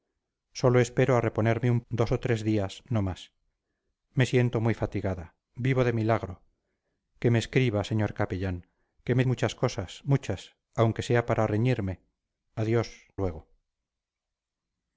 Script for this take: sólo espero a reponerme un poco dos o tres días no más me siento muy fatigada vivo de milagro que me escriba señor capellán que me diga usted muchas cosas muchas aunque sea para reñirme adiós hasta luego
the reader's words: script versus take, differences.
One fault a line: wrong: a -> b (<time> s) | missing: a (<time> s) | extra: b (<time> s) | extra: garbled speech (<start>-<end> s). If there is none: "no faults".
missing: poco (1.8 s)
missing: diga usted (9.2 s)
missing: hasta (13.1 s)